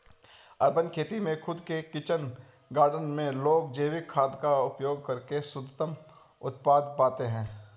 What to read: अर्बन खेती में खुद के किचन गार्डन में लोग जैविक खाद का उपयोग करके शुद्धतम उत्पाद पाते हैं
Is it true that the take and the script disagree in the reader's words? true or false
false